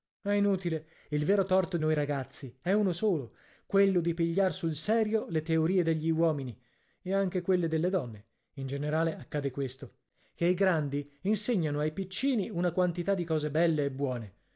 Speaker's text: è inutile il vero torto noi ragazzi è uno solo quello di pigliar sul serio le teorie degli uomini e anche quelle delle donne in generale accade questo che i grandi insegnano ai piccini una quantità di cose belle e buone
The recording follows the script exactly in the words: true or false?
true